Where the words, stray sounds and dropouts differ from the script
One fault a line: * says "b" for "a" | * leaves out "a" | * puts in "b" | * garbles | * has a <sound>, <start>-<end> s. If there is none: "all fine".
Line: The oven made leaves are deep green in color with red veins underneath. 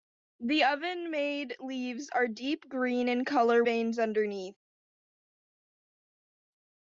* leaves out "with red"